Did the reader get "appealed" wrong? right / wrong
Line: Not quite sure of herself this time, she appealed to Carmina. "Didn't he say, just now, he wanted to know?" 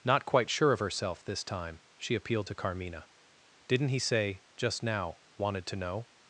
right